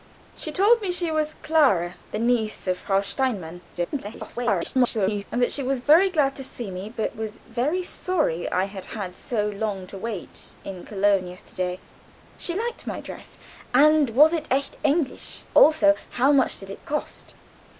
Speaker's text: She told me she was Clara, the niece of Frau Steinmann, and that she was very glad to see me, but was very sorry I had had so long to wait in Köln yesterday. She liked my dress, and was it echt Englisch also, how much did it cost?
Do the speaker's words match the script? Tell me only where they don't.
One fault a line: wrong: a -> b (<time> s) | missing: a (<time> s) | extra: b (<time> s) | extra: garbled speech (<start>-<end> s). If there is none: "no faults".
extra: garbled speech (3.7-5.2 s)